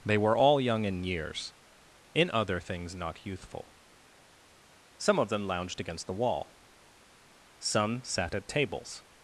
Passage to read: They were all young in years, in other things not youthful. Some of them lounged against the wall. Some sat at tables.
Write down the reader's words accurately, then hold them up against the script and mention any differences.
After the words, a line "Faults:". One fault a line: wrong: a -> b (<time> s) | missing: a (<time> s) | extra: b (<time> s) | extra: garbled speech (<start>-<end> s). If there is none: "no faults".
They were all young in years, in other things not youthful. Some of them lounged against the wall. Some sat at tables.
Faults:
no faults